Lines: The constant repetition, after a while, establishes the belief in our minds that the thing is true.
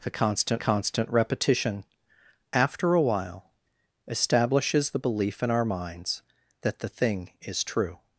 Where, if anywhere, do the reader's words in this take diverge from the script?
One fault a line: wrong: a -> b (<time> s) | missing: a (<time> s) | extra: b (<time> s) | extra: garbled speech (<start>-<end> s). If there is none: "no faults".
extra: constant (0.6 s)